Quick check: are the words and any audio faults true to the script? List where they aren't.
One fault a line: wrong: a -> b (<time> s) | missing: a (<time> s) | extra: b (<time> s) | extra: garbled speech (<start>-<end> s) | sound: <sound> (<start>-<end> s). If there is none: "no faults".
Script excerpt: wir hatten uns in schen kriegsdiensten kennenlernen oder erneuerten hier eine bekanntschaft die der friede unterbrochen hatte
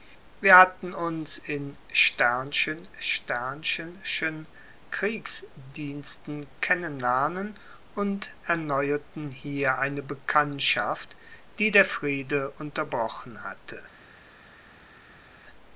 wrong: oder -> und (7.9 s)